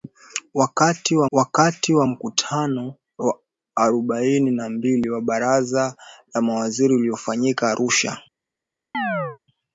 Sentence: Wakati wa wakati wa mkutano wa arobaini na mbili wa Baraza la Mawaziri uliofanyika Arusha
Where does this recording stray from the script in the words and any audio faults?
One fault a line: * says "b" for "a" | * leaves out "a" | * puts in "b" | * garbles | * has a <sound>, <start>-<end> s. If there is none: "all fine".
* has a chirp, 8.9-9.4 s